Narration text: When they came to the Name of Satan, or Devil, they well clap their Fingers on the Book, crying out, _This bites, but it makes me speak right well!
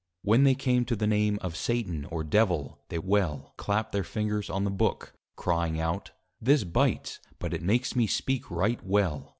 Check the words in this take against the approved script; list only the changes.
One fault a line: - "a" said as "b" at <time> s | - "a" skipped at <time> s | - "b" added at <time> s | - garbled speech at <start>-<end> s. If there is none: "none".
none